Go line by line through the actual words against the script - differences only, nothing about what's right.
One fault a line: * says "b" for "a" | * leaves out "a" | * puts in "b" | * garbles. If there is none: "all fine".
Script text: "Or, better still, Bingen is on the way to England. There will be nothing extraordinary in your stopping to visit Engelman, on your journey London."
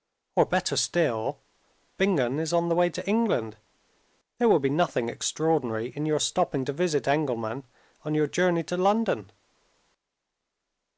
* puts in "to"